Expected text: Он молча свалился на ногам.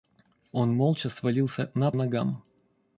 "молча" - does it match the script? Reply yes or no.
yes